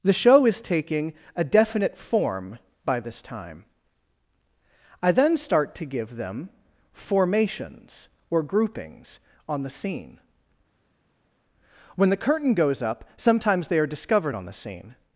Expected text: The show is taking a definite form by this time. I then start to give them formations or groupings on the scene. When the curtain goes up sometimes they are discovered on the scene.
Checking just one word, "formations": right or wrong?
right